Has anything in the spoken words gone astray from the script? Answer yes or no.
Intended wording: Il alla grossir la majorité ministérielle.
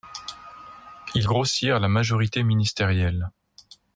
yes